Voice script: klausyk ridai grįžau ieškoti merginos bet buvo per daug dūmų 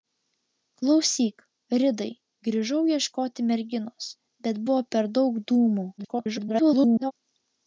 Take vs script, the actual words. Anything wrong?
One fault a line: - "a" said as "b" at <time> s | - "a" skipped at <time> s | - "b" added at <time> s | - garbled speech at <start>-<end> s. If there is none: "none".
- garbled speech at 6.0-7.1 s